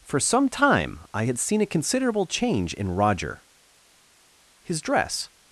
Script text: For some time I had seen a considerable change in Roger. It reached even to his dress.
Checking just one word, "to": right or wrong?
wrong